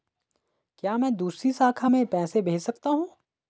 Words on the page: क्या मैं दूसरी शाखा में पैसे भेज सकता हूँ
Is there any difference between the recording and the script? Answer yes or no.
no